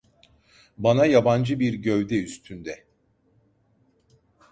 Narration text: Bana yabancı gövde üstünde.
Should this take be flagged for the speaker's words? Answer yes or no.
yes